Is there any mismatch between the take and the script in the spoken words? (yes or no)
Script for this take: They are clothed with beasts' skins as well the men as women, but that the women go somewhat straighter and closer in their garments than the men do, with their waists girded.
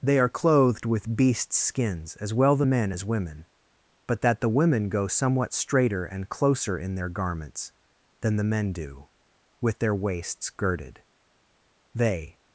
yes